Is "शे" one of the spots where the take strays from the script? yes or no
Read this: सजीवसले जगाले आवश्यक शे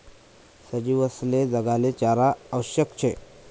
no